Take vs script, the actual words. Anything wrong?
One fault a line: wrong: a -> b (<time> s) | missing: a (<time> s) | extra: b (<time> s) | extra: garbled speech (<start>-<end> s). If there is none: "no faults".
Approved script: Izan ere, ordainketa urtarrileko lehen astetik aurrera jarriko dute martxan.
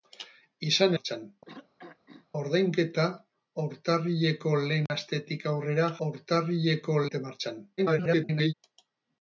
wrong: ere -> martxan (0.9 s)
wrong: jarriko -> urtarrileko (6.1 s)
extra: garbled speech (7.8-8.5 s)